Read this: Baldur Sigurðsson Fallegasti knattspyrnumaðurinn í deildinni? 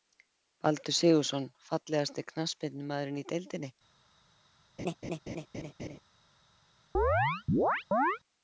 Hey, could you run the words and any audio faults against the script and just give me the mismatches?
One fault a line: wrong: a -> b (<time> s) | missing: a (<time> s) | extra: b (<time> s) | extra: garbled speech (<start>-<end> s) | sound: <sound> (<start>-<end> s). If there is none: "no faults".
sound: laugh (4.8-6.0 s)
sound: chirp (6.9-8.2 s)